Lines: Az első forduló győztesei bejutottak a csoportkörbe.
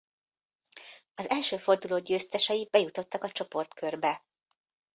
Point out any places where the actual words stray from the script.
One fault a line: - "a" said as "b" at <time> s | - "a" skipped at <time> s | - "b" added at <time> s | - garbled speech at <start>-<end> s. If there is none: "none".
none